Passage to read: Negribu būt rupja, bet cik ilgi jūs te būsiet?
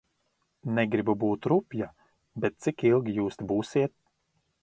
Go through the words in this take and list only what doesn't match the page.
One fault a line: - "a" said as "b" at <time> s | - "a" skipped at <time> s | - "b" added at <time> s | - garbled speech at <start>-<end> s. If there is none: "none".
none